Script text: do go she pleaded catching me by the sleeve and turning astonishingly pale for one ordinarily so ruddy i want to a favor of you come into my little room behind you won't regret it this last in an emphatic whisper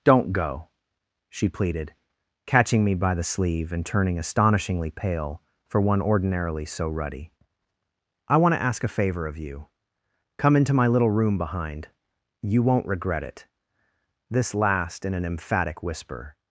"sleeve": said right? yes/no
yes